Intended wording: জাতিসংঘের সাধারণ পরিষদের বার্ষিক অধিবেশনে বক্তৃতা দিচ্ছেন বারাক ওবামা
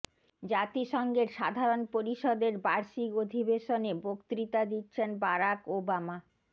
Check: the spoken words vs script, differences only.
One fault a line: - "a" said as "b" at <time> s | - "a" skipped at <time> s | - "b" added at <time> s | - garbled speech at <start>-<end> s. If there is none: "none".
none